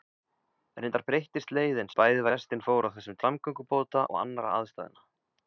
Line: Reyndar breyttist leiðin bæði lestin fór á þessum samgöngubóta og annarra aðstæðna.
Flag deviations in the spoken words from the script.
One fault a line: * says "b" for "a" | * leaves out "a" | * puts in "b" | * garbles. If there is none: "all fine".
all fine